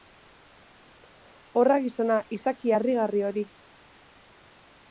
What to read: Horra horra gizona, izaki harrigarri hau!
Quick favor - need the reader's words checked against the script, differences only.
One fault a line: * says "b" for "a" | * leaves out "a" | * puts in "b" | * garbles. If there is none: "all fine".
* leaves out "horra"
* says "hori" for "hau"